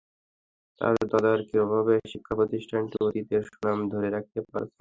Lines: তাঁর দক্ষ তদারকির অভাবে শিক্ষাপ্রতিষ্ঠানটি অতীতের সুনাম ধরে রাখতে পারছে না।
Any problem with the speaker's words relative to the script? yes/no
yes